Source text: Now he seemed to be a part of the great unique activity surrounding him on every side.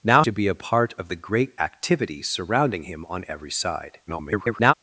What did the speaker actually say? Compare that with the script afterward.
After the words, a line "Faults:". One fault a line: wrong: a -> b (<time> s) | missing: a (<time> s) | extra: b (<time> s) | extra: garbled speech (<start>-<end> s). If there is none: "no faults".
Now to be a part of the great activity surrounding him on every side. [garbled]
Faults:
missing: he seemed (0.2 s)
missing: unique (1.5 s)
extra: garbled speech (4.1-4.7 s)